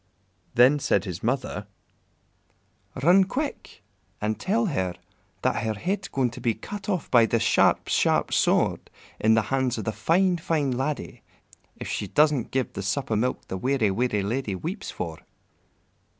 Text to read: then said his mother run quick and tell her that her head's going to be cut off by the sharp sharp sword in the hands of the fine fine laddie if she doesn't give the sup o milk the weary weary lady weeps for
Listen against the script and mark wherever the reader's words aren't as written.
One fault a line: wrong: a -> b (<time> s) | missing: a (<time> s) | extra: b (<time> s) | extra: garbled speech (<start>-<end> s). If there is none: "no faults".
no faults